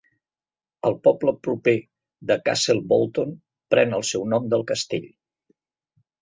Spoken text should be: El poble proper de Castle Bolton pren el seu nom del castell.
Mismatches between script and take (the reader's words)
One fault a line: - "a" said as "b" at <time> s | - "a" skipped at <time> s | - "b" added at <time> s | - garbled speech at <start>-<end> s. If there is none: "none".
none